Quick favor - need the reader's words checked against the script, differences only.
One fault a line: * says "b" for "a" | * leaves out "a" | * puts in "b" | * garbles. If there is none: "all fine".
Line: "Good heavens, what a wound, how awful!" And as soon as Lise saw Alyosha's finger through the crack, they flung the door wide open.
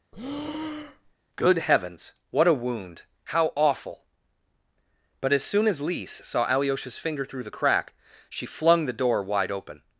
* says "But" for "And"
* says "she" for "they"